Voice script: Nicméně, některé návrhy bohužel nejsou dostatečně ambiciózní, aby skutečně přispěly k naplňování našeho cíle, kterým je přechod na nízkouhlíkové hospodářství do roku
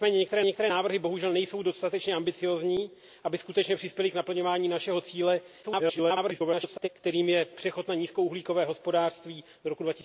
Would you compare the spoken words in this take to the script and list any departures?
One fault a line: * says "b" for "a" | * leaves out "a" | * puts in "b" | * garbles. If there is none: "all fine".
* puts in "některé"
* garbles